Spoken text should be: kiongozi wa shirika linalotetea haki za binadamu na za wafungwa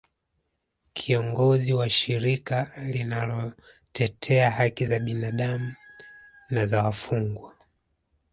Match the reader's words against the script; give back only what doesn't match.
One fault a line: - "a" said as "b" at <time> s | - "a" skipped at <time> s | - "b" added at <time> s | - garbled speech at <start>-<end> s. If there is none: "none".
none